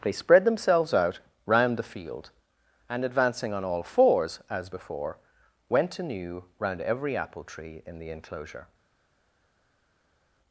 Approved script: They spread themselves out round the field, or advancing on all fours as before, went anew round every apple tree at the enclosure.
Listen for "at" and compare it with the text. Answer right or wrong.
wrong